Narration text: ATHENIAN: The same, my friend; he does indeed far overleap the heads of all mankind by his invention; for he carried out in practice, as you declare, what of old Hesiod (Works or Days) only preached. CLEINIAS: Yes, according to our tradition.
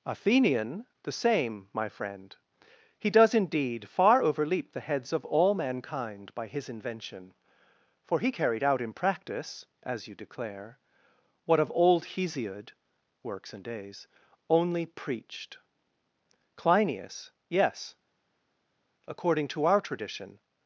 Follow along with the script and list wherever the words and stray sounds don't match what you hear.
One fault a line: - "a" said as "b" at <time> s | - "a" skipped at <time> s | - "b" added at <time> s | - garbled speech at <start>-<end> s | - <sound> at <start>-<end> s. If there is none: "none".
- "or" said as "and" at 13.5 s